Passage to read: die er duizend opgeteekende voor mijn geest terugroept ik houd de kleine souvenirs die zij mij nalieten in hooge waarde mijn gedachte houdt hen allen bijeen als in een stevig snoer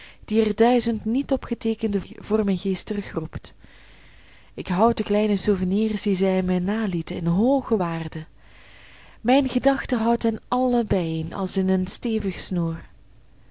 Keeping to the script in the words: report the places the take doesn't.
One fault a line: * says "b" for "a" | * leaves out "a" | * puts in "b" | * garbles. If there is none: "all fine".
* puts in "niet"